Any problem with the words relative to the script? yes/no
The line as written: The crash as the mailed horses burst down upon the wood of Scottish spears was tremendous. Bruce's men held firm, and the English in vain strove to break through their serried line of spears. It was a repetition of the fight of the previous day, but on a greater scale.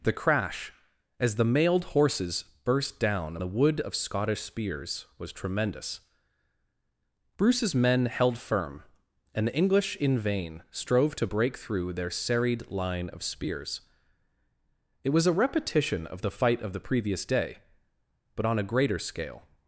yes